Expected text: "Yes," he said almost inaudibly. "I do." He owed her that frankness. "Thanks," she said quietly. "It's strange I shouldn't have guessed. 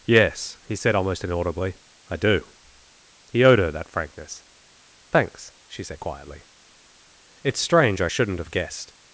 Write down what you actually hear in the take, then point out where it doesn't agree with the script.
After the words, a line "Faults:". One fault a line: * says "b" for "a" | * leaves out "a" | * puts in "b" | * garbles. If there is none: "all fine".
"Yes," he said almost inaudibly. "I do." He owed her that frankness. "Thanks," she said quietly. "It's strange I shouldn't have guessed.
Faults:
all fine